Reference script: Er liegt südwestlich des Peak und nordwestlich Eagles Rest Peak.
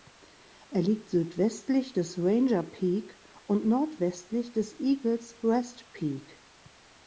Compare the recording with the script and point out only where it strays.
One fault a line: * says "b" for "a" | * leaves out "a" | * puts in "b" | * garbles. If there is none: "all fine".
* puts in "Ranger"
* puts in "des"